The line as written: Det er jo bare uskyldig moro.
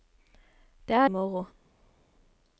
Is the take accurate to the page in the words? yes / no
no